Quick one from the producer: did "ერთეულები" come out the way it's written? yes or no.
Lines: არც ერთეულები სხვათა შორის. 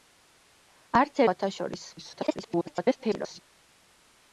no